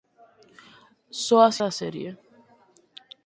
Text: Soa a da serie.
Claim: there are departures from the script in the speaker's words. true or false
false